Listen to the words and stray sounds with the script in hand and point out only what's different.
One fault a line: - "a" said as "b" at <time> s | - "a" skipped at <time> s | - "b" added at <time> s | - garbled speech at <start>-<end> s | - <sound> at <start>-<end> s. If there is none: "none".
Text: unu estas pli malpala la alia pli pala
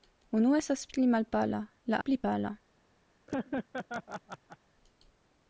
- "alia" skipped at 2.0 s
- laugh at 3.3-4.6 s